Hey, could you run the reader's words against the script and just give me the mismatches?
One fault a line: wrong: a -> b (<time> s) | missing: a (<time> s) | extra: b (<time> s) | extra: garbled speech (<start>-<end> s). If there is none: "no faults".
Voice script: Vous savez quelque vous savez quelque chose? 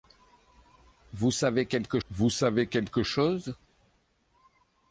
no faults